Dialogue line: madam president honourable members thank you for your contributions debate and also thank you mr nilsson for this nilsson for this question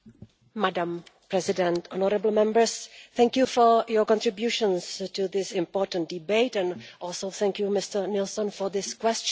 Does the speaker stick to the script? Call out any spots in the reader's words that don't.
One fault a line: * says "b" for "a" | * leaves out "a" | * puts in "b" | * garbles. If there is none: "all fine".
* puts in "to this important"
* leaves out "nilsson for this"